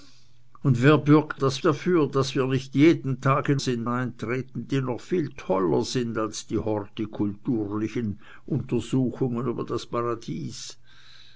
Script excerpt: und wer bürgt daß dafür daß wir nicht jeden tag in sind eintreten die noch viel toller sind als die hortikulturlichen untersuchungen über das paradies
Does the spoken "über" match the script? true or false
true